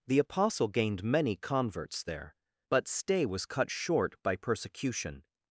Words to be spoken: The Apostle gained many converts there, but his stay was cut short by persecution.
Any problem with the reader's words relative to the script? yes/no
yes